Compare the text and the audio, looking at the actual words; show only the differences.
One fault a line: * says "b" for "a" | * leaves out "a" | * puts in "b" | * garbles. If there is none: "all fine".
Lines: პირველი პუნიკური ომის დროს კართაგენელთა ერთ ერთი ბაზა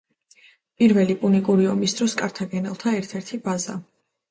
all fine